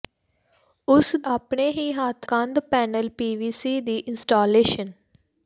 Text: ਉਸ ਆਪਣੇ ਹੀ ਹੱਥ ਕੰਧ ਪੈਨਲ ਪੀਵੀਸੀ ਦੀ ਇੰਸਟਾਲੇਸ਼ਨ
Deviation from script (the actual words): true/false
false